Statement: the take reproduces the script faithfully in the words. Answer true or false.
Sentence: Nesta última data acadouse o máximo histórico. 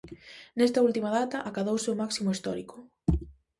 true